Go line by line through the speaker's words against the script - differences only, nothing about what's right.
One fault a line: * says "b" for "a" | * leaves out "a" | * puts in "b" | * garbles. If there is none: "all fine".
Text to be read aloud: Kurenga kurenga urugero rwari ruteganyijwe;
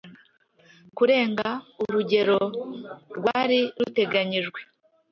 * leaves out "kurenga"